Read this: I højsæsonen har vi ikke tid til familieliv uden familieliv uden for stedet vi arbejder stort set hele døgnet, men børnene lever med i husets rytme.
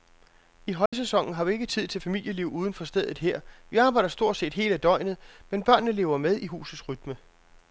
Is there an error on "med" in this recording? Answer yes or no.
no